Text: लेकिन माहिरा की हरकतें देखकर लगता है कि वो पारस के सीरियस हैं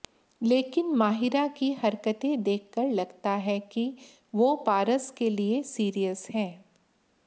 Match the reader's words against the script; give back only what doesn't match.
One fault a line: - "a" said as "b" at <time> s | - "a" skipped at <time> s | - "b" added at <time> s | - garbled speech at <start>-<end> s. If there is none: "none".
- "लिए" added at 5.3 s